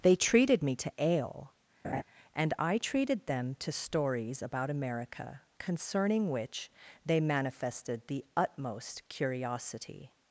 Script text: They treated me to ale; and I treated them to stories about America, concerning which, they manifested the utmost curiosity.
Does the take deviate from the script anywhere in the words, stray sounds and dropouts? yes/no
yes